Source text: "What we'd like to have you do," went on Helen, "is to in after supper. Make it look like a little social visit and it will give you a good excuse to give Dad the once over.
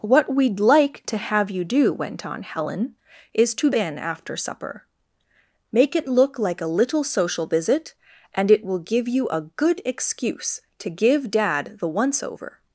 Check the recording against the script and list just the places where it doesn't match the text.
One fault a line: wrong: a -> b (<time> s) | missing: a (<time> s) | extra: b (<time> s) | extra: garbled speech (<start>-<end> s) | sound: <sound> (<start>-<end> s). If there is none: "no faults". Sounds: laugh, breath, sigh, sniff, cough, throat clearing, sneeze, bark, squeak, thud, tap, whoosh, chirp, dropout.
no faults